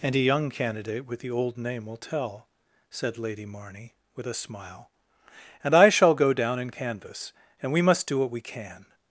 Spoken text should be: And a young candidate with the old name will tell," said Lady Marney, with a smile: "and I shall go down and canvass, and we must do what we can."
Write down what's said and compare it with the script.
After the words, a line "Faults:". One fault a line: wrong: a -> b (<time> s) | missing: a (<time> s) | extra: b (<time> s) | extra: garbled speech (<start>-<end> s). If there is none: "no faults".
And a young candidate with the old name will tell," said Lady Marney, with a smile: "and I shall go down and canvass, and we must do what we can."
Faults:
no faults